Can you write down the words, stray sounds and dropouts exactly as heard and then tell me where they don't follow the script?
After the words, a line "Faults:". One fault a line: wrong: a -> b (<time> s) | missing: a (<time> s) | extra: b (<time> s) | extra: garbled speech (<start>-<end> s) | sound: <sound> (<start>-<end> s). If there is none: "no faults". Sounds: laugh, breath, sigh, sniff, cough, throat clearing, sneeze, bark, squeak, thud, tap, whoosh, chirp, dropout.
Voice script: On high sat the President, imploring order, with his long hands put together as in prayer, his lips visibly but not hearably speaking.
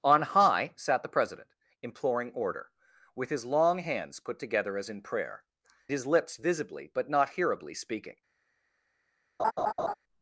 On high sat the President, imploring order, with his long hands put together as in prayer, his lips visibly but not hearably speaking.
Faults:
sound: laugh (9.4-9.9 s)